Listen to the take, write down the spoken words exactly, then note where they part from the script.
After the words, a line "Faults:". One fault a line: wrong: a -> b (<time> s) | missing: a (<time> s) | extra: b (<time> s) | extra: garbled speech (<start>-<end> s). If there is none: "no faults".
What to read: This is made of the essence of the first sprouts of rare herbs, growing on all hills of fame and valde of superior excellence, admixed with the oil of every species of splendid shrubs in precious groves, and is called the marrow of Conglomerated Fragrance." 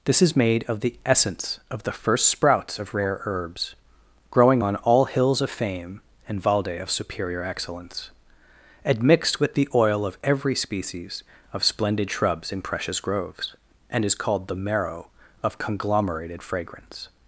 This is made of the essence of the first sprouts of rare herbs, growing on all hills of fame and valde of superior excellence, admixed with the oil of every species of splendid shrubs in precious groves, and is called the marrow of Conglomerated Fragrance."
Faults:
no faults